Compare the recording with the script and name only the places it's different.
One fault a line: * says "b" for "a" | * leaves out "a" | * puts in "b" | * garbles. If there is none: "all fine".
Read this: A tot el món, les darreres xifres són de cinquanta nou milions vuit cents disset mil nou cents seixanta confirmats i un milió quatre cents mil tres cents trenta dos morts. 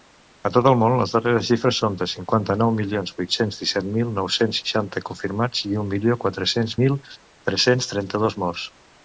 all fine